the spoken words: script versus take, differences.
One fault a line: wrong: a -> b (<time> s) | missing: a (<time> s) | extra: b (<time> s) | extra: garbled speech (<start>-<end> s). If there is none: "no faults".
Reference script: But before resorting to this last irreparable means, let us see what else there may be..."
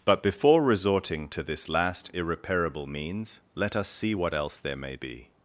no faults